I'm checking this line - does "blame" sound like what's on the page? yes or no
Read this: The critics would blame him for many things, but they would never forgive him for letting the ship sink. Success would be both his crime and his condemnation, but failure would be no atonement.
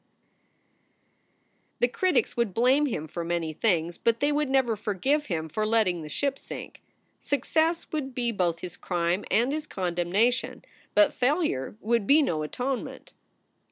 yes